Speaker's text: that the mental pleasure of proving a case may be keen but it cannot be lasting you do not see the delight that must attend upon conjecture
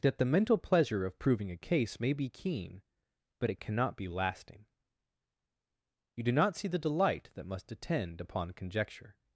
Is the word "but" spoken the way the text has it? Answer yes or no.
yes